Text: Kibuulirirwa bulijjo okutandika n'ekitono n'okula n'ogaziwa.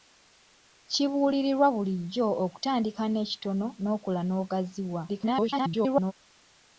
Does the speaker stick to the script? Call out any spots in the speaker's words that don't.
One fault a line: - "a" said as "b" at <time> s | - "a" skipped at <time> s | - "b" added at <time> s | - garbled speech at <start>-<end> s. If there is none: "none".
- garbled speech at 5.1-6.1 s